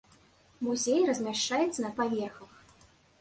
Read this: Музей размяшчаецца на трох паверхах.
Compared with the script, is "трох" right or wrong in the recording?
wrong